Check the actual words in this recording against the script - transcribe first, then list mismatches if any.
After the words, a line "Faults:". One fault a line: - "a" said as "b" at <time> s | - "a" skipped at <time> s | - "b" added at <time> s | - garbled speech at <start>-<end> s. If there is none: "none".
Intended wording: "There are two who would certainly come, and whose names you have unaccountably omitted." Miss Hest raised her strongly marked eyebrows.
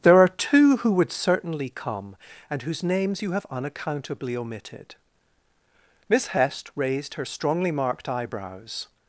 "There are two who would certainly come, and whose names you have unaccountably omitted." Miss Hest raised her strongly marked eyebrows.
Faults:
none